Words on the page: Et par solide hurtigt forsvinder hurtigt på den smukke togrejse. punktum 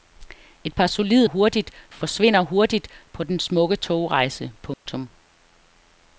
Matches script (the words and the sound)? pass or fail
fail